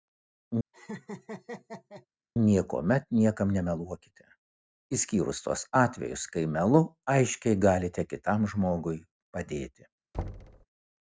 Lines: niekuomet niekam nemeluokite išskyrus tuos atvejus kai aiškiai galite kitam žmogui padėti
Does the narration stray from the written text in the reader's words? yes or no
yes